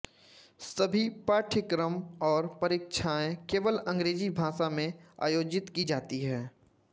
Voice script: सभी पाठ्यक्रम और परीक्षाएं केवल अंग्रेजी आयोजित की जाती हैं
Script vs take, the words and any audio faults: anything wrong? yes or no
yes